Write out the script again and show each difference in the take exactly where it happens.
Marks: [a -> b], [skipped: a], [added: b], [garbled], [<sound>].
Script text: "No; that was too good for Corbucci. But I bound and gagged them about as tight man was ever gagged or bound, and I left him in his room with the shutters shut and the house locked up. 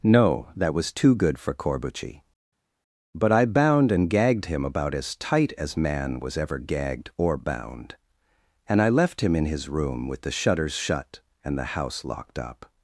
"No; that was too good for Corbucci. But I bound and gagged [them -> him] about as tight [added: as] man was ever gagged or bound, and I left him in his room with the shutters shut and the house locked up.